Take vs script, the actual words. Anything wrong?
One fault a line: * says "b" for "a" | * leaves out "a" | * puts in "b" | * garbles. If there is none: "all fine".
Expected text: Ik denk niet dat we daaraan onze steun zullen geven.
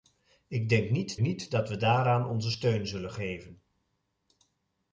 * puts in "niet"